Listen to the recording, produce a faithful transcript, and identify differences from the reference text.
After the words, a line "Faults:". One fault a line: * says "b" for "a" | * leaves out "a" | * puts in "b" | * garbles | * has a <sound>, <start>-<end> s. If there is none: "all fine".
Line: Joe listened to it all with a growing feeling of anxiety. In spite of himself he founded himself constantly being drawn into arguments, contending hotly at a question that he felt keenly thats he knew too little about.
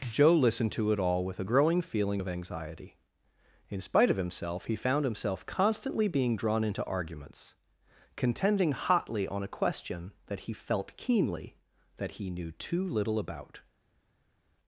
Joe listened to it all with a growing feeling of anxiety. In spite of himself he found himself constantly being drawn into arguments, contending hotly on a question that he felt keenly that he knew too little about.
Faults:
* says "found" for "founded"
* says "on" for "at"
* says "that" for "thats"